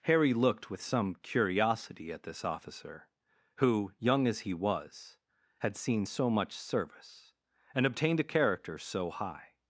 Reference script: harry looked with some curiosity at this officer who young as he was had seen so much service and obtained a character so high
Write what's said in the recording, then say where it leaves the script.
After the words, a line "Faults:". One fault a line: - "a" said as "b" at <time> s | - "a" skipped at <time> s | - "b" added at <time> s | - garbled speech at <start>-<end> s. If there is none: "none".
harry looked with some curiosity at this officer who young as he was had seen so much service and obtained a character so high
Faults:
none